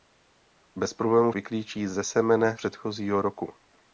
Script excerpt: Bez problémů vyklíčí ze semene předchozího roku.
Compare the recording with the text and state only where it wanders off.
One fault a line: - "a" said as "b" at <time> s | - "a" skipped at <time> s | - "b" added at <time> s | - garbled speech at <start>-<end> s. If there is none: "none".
none